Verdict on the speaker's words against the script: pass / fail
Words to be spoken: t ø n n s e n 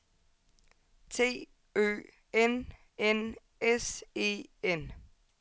pass